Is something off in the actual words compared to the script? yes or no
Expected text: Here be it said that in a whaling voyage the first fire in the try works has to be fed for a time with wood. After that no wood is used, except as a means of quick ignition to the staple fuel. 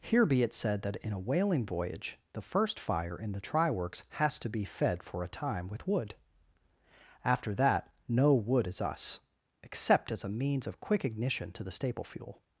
yes